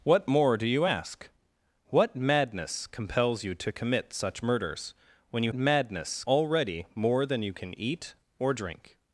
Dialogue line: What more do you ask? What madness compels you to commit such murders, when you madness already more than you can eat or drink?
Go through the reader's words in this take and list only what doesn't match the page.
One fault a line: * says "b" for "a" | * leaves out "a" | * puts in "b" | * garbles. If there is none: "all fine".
all fine